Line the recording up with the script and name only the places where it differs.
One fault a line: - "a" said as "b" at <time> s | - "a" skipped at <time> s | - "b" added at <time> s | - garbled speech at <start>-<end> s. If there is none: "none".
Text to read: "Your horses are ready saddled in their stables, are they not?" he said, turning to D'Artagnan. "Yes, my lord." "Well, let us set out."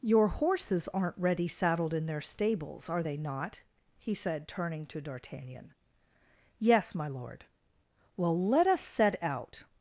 - "are" said as "aren't" at 0.9 s